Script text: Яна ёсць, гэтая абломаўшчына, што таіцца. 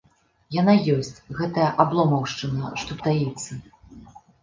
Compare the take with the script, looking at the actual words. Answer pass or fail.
pass